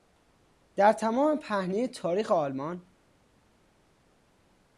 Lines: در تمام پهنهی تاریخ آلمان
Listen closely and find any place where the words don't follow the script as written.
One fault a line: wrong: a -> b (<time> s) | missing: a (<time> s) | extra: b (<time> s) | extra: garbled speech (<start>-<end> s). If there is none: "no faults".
no faults